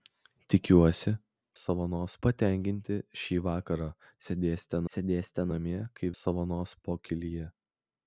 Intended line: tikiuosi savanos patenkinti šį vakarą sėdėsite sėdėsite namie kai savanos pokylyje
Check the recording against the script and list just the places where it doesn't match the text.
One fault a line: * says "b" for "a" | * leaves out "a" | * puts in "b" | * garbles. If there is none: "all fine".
all fine